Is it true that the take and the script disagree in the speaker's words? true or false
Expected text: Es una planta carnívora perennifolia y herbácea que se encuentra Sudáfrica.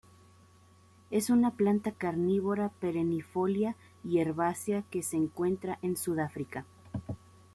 true